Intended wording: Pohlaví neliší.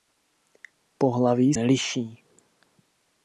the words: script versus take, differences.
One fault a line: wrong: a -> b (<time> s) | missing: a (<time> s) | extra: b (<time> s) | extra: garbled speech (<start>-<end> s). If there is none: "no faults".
no faults